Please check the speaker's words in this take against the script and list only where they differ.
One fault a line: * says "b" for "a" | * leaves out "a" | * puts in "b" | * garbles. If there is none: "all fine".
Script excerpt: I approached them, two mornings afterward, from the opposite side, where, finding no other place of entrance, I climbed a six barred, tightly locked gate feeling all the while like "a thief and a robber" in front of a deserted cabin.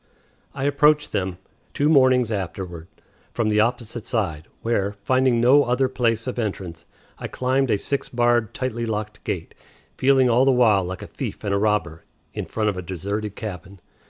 all fine